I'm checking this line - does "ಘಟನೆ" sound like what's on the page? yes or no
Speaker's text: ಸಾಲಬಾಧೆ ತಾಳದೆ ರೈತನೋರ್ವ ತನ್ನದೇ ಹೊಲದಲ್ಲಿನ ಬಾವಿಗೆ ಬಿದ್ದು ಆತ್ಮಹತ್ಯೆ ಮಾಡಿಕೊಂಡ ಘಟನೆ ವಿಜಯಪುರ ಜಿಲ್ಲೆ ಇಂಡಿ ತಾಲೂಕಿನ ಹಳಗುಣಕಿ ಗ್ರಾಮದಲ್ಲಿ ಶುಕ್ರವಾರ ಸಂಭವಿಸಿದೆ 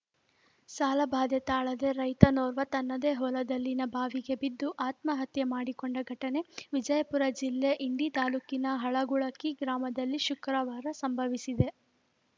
yes